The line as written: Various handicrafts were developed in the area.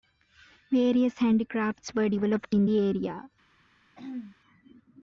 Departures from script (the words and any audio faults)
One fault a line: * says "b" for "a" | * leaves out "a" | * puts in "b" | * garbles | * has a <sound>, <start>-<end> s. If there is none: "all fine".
* has a throat clearing, 4.0-4.4 s